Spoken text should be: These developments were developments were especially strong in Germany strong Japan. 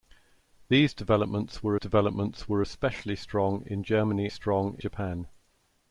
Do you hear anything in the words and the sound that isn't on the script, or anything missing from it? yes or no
no